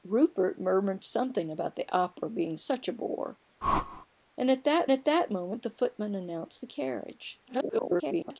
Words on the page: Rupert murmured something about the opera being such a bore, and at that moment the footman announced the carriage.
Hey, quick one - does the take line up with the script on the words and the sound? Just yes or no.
no